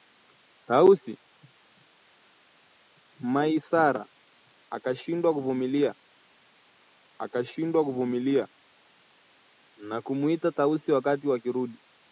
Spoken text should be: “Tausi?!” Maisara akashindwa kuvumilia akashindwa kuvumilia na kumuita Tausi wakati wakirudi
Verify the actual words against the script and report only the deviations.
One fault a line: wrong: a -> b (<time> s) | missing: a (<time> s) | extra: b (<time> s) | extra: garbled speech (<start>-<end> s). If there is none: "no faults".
no faults